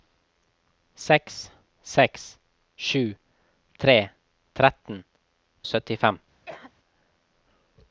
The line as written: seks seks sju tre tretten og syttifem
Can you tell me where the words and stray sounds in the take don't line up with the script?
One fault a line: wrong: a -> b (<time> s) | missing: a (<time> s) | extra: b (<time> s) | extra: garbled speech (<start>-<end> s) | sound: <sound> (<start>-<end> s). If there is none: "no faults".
sound: cough (6.5-6.7 s)